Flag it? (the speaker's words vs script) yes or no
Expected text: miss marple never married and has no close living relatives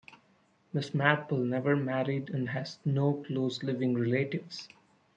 no